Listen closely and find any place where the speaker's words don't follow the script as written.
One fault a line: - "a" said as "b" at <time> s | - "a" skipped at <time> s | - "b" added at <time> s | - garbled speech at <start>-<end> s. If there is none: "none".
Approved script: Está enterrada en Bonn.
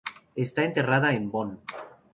none